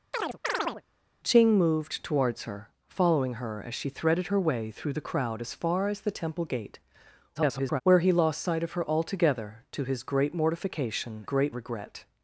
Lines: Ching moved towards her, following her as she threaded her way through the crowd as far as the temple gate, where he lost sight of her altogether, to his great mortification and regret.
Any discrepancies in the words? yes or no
yes